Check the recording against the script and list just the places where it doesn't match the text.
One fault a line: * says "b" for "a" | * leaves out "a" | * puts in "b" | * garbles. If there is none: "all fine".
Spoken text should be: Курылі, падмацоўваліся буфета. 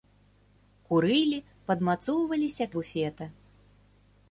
all fine